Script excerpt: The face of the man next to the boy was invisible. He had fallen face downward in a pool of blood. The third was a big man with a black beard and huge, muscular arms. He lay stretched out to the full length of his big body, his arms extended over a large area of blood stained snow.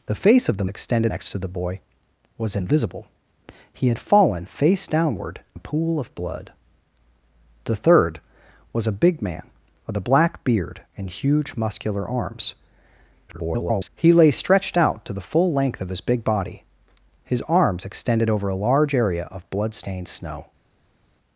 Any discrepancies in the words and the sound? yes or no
yes